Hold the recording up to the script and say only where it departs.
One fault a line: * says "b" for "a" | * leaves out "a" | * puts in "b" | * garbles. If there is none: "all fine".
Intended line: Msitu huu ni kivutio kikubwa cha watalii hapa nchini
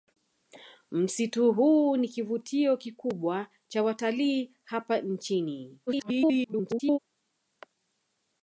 * garbles